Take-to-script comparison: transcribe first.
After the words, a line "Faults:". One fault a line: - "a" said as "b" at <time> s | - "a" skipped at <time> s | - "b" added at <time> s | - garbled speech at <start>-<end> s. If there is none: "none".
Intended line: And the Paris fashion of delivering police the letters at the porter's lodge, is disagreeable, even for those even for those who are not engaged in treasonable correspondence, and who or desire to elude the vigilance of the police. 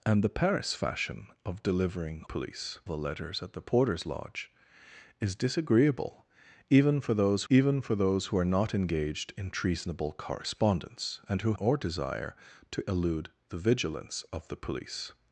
And the Paris fashion of delivering police the letters at the porter's lodge, is disagreeable, even for those even for those who are not engaged in treasonable correspondence, and who or desire to elude the vigilance of the police.
Faults:
none